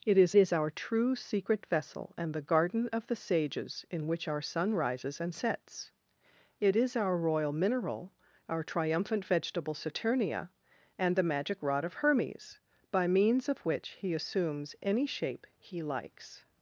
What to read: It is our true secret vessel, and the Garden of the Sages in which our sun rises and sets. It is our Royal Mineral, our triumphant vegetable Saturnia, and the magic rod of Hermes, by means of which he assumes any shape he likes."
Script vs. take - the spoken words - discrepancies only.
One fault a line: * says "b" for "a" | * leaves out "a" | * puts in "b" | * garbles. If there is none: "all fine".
* puts in "is"